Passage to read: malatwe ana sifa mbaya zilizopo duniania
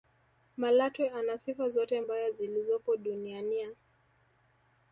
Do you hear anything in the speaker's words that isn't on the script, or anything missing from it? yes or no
yes